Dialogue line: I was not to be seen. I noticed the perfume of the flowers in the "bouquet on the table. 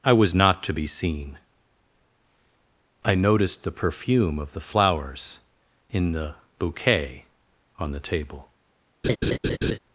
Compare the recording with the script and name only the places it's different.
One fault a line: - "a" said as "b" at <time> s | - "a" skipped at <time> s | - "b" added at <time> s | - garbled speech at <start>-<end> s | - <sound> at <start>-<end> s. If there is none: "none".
- laugh at 9.0-9.8 s